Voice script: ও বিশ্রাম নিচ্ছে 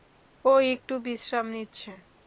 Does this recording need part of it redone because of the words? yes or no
yes